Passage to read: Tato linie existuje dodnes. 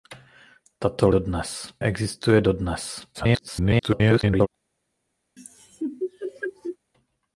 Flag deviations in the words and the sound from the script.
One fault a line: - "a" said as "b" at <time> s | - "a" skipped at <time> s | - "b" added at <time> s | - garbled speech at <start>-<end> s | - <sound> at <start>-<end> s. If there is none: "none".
- "linie" said as "dodnes" at 1.1 s
- garbled speech at 3.1-4.5 s
- laugh at 5.4-6.8 s